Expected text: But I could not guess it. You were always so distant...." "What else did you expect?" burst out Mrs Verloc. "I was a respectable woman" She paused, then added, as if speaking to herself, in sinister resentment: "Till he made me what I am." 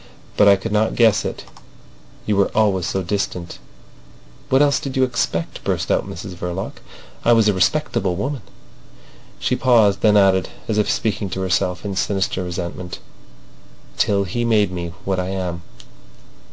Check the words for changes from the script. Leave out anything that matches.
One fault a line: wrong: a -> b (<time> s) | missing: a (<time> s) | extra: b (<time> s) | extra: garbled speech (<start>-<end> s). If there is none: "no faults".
no faults